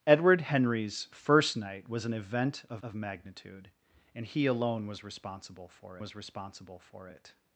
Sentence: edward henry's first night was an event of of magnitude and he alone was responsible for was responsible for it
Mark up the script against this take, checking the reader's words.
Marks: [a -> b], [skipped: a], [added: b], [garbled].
edward henry's first night was an event of of magnitude and he alone was responsible for was responsible for it